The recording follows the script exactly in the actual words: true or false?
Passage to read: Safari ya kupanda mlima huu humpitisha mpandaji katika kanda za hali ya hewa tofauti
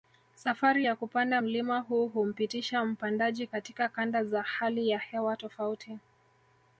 true